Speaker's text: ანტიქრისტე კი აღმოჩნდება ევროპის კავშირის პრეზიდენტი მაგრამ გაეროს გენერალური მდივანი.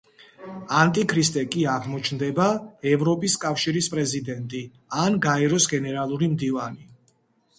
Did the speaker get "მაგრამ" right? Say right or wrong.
wrong